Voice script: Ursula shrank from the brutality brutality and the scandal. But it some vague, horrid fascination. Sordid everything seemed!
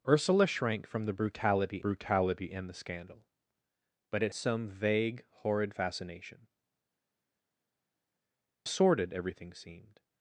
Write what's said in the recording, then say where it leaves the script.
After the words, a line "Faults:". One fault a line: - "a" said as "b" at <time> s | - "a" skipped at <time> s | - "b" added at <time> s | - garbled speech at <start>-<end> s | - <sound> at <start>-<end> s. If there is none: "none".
Ursula shrank from the brutality brutality and the scandal. But it some vague, horrid fascination. Sordid everything seemed!
Faults:
none